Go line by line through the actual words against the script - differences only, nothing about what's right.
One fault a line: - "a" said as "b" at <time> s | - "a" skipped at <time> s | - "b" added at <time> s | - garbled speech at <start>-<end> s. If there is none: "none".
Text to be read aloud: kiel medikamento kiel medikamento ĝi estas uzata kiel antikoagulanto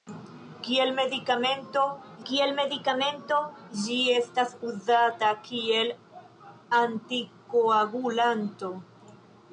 none